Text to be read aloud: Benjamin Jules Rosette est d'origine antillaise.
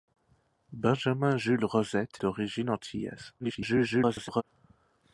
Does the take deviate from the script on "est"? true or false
true